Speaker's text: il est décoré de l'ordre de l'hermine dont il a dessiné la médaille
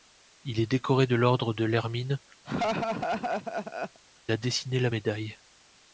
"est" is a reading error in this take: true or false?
false